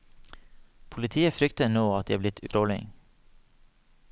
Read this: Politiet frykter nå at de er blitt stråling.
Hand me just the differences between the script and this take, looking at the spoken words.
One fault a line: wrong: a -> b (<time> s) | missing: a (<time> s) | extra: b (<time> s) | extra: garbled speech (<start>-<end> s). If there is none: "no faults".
no faults